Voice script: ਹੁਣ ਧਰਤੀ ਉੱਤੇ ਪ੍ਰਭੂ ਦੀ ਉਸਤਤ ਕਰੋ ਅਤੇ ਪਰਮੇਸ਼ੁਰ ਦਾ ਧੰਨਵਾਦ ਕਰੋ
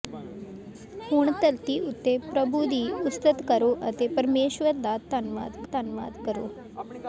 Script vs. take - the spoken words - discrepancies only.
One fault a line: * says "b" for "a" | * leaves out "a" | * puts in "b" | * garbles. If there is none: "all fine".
* puts in "ਧੰਨਵਾਦ"